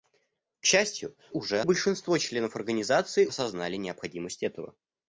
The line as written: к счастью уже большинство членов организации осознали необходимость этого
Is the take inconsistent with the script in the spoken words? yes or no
no